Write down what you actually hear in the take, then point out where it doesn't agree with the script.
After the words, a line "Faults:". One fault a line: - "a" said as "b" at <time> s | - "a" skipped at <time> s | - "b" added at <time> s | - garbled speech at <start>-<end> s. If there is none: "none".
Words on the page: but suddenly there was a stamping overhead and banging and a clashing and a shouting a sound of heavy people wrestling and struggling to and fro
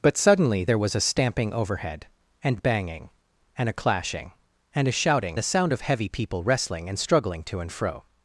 but suddenly there was a stamping overhead and banging and a clashing and a shouting a sound of heavy people wrestling and struggling to and fro
Faults:
none